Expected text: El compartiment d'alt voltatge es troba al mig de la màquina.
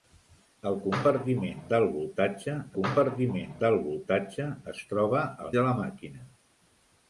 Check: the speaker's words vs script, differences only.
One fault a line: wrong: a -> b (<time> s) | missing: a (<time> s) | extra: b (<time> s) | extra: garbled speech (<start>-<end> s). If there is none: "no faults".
extra: compartiment d'alt voltatge (2.8 s)
missing: mig (5.5 s)